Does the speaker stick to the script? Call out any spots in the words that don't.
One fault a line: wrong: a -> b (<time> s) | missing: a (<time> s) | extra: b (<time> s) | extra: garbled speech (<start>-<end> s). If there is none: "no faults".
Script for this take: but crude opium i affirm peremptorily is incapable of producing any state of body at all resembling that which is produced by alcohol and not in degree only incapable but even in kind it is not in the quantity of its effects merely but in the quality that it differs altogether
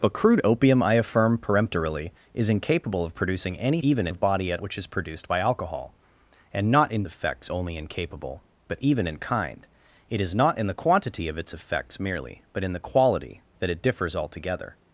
wrong: state -> even (3.8 s)
missing: all resembling that (4.6 s)
wrong: degree -> effects (7.0 s)